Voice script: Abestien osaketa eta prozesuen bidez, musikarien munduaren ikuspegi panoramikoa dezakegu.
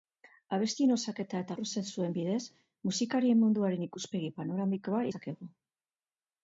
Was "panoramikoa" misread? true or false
false